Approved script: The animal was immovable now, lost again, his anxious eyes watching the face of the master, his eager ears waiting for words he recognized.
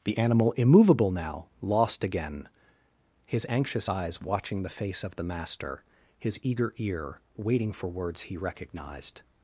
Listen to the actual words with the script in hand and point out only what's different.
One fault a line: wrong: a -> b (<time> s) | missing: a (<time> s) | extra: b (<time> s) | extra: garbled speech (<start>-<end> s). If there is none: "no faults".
missing: was (0.5 s)
wrong: ears -> ear (6.8 s)